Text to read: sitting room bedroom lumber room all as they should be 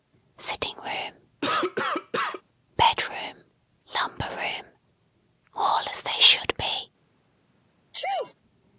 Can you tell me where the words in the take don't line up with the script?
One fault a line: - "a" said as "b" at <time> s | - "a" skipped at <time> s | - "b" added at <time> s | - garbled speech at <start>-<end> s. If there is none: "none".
none